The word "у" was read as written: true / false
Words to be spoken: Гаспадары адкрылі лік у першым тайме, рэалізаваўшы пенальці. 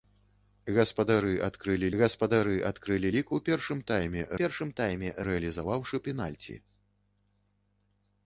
true